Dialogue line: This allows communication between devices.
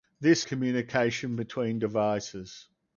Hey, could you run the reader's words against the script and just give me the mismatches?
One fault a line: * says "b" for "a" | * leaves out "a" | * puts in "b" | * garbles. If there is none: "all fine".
* leaves out "allows"